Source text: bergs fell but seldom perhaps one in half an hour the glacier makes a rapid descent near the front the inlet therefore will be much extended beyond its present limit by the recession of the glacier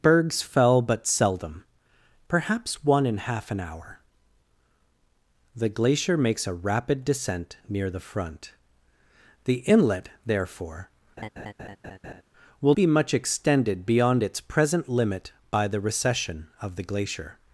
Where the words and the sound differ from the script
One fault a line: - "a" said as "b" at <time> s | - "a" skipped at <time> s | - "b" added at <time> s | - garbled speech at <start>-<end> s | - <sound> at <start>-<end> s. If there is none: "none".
- laugh at 11.2-12.2 s